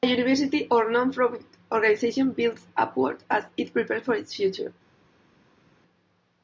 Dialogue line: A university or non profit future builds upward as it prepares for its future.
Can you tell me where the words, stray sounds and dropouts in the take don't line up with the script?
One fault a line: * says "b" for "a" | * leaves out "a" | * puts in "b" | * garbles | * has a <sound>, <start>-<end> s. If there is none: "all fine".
* says "organization" for "future"